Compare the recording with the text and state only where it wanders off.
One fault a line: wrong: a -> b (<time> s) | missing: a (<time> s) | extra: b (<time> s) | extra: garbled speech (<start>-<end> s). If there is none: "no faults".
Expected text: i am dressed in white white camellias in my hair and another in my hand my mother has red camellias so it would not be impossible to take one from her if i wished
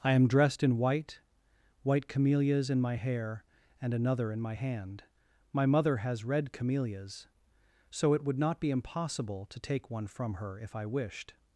no faults